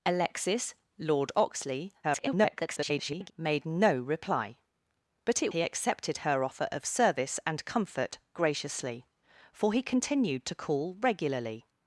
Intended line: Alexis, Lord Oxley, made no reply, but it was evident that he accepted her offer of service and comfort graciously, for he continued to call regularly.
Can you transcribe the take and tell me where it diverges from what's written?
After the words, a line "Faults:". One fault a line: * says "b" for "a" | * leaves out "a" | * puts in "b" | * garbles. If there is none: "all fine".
Alexis, Lord Oxley, [garbled] made no reply, but it he accepted her offer of service and comfort graciously, for he continued to call regularly.
Faults:
* garbles
* leaves out "was evident that"